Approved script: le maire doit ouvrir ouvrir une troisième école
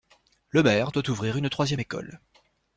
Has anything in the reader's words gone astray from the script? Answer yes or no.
yes